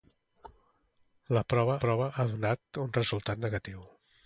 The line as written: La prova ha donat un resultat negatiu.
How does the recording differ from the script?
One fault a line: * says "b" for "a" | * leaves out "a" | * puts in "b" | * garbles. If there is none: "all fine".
* puts in "prova"